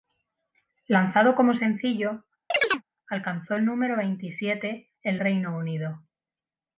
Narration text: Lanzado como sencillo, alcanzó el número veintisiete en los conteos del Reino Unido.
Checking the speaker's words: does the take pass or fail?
fail